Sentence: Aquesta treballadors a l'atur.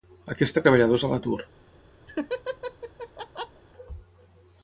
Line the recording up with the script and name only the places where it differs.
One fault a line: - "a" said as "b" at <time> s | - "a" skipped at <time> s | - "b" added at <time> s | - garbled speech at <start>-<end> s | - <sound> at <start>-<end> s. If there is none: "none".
- laugh at 2.1-3.6 s